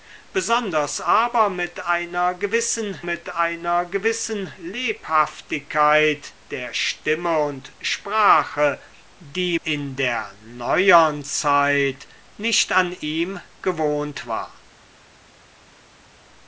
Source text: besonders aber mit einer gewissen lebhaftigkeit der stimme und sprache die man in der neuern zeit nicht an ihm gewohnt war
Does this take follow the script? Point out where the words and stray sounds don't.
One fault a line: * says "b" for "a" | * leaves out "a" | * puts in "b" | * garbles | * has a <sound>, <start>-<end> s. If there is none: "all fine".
* puts in "mit einer gewissen"
* leaves out "man"